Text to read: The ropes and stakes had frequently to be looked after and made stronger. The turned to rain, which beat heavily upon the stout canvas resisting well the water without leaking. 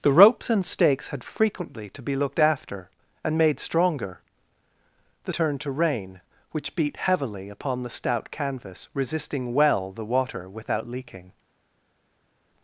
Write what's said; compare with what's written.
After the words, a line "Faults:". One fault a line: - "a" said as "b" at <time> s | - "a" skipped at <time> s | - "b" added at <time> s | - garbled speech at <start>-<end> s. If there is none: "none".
The ropes and stakes had frequently to be looked after and made stronger. The turned to rain, which beat heavily upon the stout canvas resisting well the water without leaking.
Faults:
none